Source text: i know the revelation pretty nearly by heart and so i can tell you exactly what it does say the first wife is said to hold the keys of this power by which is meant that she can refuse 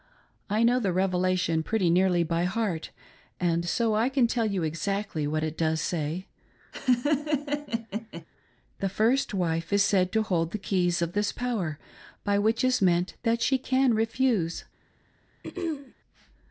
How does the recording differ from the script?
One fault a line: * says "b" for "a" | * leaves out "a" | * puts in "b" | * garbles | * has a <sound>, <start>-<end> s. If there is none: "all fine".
* has a laugh, 6.7-8.3 s
* has a throat clearing, 15.4-15.9 s